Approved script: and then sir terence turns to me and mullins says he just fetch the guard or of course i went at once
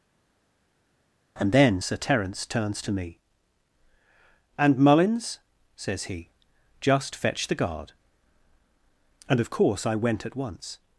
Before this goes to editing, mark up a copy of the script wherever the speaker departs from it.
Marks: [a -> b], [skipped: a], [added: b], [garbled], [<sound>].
and then sir terence turns to me and mullins says he just fetch the guard [or -> and] of course i went at once